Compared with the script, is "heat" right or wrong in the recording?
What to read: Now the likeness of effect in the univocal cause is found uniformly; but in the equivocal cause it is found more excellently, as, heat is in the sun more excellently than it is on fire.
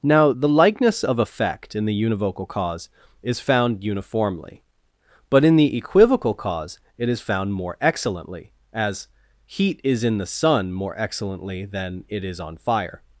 right